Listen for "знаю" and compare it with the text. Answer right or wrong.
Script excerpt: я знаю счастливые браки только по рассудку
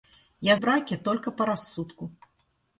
wrong